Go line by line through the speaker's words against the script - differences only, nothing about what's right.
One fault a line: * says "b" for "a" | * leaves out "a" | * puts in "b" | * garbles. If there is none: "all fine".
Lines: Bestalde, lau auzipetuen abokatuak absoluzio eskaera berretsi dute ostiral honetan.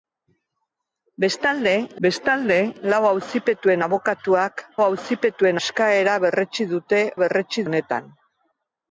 * puts in "bestalde"
* says "auzipetuen" for "absoluzio"
* says "berretsi" for "ostiral"